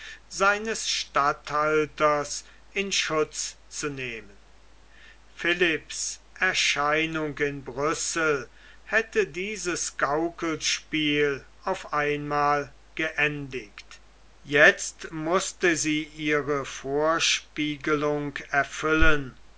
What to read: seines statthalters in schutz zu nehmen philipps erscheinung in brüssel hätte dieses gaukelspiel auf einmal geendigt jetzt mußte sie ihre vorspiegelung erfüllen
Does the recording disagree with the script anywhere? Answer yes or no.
no